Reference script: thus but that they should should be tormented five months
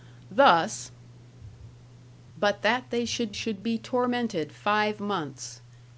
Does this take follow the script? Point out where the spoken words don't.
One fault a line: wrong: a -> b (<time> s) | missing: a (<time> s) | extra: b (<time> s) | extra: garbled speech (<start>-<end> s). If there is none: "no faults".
no faults